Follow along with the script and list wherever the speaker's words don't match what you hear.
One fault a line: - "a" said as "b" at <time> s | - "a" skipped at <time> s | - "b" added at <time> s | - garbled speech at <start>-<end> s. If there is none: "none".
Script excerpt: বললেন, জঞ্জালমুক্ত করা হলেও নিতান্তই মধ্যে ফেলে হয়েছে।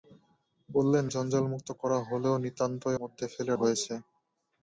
none